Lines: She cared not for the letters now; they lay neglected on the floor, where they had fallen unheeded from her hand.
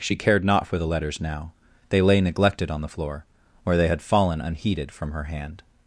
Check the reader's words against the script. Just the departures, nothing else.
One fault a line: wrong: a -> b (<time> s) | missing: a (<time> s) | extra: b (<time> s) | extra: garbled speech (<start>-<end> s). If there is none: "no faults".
no faults